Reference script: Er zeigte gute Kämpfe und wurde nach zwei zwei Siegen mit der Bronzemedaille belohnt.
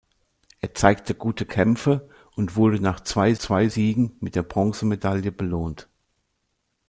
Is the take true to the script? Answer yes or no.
yes